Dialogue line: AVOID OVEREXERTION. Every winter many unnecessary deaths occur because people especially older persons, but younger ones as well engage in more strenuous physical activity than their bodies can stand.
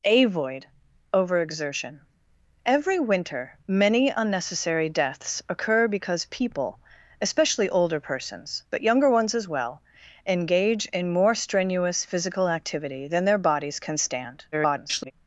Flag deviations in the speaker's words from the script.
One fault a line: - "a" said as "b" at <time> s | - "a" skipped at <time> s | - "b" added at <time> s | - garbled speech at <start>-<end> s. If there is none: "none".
- garbled speech at 14.5-15.1 s